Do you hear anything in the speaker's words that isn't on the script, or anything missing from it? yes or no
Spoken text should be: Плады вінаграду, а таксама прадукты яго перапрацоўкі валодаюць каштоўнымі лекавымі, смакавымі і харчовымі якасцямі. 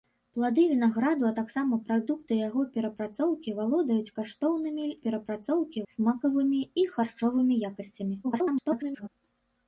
yes